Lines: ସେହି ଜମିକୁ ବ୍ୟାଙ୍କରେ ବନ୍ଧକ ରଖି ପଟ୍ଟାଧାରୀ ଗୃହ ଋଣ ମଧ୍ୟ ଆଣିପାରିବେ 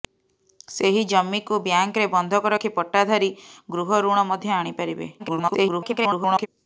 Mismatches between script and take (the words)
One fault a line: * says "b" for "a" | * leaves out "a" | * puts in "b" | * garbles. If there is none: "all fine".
* garbles